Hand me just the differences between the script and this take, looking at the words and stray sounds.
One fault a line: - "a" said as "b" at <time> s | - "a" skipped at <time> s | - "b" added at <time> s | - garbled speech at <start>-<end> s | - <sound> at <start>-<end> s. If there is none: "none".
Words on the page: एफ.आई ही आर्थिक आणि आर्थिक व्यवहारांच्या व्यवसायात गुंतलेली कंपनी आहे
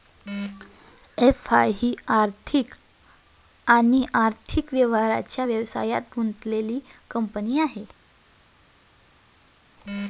none